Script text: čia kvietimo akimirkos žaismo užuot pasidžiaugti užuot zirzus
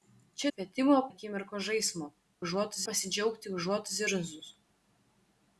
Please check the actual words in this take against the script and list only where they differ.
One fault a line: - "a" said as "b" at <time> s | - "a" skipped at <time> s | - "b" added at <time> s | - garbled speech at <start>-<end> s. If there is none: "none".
none